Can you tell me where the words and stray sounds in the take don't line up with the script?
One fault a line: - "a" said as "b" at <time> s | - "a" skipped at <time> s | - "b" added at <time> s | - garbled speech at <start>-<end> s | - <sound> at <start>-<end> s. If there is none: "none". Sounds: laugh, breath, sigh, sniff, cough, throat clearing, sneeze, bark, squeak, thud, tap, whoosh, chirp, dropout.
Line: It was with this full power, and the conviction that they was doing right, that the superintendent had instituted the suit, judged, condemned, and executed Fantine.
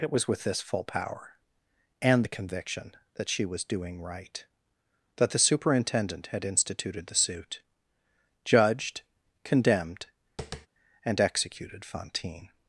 - "they" said as "she" at 3.3 s
- tap at 10.4-10.7 s